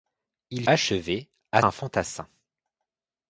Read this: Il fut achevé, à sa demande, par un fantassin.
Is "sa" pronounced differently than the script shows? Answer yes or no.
yes